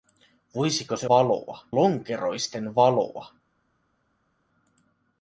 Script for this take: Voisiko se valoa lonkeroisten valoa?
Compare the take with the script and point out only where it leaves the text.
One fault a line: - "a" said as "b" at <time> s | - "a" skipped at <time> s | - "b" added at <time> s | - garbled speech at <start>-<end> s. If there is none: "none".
none